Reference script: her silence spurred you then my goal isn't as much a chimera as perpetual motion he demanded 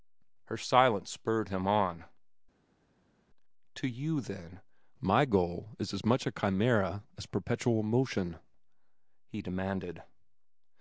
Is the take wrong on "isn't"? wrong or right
wrong